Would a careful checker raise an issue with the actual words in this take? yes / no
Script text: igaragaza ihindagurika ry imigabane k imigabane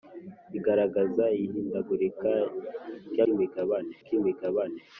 no